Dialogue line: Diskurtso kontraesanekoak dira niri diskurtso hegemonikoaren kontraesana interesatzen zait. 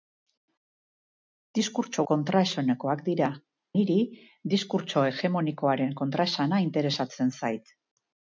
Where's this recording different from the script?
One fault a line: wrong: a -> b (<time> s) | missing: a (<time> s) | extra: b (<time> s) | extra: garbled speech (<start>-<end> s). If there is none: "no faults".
no faults